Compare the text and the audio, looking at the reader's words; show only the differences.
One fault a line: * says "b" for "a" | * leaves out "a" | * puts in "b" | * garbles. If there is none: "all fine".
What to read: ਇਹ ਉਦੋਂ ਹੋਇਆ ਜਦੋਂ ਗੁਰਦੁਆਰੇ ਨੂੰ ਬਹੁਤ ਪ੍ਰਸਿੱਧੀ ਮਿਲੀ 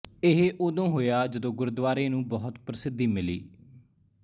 all fine